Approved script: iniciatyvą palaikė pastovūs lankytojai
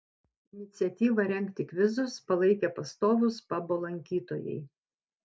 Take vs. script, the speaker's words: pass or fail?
fail